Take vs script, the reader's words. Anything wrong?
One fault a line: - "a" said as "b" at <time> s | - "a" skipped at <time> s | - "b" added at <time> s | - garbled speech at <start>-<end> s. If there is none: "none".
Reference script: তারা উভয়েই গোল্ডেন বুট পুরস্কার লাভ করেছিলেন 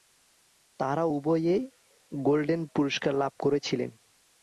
- "বুট" skipped at 2.6 s